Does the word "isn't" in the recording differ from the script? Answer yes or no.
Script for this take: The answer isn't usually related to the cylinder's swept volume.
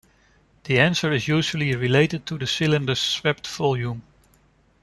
yes